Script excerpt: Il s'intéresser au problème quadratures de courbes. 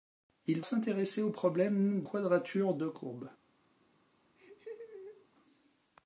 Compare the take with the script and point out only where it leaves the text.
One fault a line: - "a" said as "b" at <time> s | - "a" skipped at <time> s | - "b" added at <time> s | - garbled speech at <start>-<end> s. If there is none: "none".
none